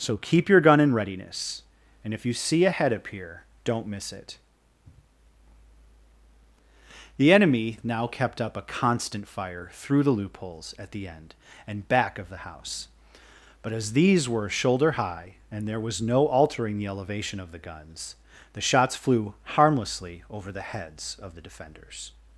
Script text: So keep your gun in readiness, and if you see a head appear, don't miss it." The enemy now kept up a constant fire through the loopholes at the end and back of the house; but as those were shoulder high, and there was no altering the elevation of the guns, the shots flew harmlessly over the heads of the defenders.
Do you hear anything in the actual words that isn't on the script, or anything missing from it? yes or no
yes